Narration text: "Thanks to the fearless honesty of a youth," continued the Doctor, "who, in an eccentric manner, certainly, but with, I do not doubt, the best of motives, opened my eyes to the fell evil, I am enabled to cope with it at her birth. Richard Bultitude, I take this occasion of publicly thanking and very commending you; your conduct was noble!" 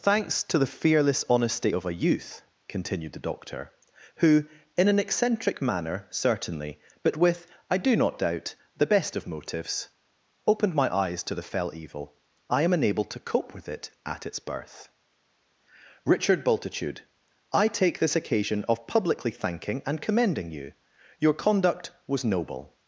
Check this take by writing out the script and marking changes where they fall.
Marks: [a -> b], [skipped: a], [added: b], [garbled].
"Thanks to the fearless honesty of a youth," continued the Doctor, "who, in an eccentric manner, certainly, but with, I do not doubt, the best of motives, opened my eyes to the fell evil, I am enabled to cope with it at [her -> its] birth. Richard Bultitude, I take this occasion of publicly thanking and [skipped: very] commending you; your conduct was noble!"